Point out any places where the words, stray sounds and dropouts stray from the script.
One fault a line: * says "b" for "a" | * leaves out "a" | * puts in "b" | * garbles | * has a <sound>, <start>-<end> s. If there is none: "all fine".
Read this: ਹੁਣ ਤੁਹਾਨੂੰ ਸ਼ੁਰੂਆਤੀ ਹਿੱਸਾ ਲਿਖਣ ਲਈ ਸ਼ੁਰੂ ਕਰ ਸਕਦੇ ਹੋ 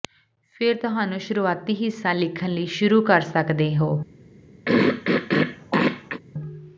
* says "ਫਿਰ" for "ਹੁਣ"
* has a throat clearing, 4.6-6.2 s